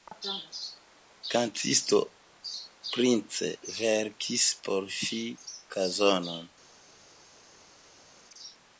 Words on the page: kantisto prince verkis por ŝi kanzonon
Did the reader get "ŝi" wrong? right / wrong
right